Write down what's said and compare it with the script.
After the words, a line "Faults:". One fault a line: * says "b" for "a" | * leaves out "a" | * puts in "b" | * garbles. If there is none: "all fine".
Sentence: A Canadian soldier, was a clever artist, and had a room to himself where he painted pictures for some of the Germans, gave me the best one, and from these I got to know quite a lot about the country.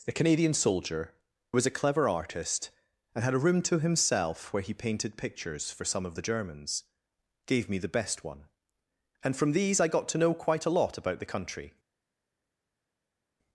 A Canadian soldier, was a clever artist, and had a room to himself where he painted pictures for some of the Germans, gave me the best one, and from these I got to know quite a lot about the country.
Faults:
all fine